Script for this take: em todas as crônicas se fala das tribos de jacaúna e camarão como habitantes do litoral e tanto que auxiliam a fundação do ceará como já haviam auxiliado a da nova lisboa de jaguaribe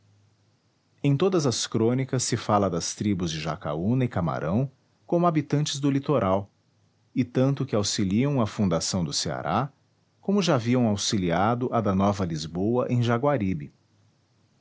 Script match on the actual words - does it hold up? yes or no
no